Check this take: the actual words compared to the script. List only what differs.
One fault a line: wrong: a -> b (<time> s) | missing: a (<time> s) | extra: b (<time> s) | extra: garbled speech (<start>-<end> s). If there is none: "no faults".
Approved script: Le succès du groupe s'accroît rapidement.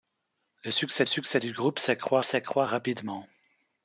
extra: succès (1.1 s)
extra: s'accroît (2.2 s)